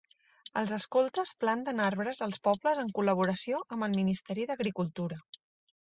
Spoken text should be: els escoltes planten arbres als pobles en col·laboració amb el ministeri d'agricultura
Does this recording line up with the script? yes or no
yes